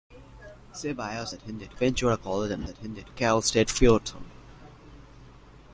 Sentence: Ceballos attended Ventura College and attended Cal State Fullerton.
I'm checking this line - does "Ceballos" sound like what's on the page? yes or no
yes